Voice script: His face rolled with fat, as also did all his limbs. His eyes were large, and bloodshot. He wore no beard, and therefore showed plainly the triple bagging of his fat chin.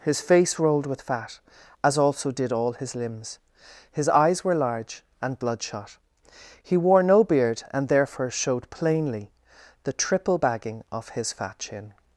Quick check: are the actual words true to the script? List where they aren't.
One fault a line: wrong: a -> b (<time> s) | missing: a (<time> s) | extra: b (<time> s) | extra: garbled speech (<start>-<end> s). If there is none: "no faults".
no faults